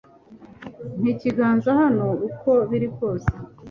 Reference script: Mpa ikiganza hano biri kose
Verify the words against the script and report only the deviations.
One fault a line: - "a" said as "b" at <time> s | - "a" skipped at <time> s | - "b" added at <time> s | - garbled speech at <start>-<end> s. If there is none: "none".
- "uko" added at 2.3 s